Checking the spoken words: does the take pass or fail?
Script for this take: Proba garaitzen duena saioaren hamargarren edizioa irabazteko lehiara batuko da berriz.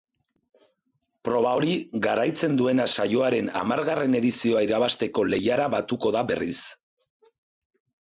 fail